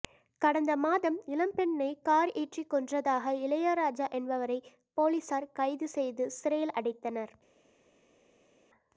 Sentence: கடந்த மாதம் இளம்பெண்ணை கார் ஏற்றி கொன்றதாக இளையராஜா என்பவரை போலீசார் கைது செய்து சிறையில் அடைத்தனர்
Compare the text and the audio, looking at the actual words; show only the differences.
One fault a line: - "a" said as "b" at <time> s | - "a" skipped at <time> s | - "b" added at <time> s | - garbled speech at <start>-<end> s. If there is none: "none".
none